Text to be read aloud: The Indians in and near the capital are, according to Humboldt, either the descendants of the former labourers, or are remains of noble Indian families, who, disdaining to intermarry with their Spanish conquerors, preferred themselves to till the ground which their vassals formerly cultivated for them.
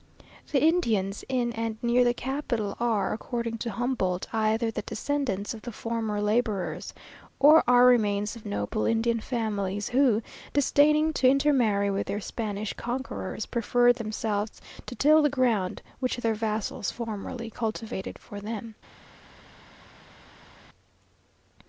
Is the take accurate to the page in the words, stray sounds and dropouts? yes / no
yes